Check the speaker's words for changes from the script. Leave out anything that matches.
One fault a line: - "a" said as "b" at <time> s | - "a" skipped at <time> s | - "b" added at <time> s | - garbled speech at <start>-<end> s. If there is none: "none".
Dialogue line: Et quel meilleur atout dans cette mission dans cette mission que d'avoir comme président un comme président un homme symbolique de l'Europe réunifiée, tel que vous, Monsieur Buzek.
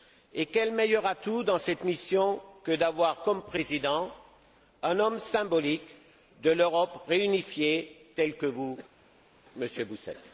- "dans cette mission" skipped at 2.4 s
- "comme président un" skipped at 5.0 s